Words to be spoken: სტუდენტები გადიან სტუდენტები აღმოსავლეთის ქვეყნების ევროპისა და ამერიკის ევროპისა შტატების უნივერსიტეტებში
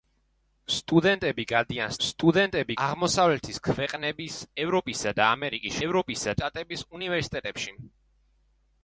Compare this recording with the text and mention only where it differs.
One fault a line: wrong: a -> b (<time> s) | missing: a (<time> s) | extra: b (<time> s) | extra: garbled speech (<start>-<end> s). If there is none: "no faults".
no faults